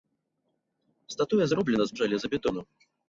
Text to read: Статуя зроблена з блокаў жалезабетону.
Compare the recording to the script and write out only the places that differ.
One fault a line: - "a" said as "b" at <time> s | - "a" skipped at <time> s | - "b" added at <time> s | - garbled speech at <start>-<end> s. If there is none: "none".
- "блокаў" skipped at 2.0 s